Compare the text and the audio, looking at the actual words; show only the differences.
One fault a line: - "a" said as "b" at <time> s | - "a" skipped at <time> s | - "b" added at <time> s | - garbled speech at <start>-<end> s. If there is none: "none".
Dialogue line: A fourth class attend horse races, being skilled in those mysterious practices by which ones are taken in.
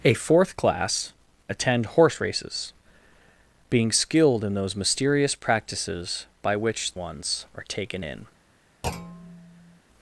none